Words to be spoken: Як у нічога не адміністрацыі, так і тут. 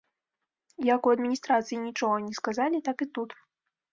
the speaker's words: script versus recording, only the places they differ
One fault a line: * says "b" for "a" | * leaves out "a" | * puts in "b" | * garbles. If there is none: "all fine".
* puts in "адміністрацыі"
* says "сказалі" for "адміністрацыі"